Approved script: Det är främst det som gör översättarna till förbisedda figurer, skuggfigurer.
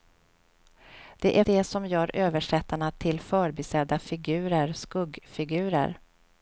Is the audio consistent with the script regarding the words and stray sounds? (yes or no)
no